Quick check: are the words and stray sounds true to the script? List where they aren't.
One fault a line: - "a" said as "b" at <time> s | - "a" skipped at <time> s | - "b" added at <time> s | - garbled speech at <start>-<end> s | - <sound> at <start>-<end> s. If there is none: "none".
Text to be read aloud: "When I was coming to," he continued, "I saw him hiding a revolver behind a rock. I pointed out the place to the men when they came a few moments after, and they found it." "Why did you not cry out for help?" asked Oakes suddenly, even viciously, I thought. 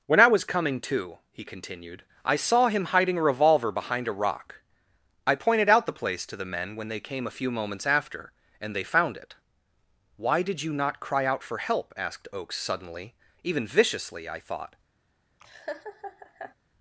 - laugh at 15.4-16.5 s